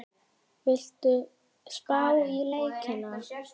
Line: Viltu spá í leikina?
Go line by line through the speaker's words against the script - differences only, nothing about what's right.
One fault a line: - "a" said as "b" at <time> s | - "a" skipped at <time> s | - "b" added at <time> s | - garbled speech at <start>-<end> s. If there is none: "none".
none